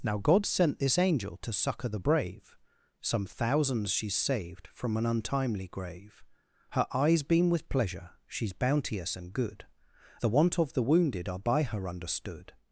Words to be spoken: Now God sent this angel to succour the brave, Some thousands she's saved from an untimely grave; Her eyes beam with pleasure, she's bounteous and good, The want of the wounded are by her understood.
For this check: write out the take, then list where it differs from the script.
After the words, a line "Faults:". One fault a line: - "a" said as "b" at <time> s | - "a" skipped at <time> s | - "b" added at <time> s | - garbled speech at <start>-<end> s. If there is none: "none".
Now God sent this angel to succour the brave, Some thousands she's saved from an untimely grave; Her eyes beam with pleasure, she's bounteous and good, The want of the wounded are by her understood.
Faults:
none